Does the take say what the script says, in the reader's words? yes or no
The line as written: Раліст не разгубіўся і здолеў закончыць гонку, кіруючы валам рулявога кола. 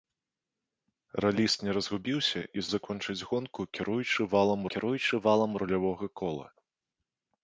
no